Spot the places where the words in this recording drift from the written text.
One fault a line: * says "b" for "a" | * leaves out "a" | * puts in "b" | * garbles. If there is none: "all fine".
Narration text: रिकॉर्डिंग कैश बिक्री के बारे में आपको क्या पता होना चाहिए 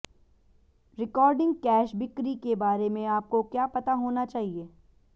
all fine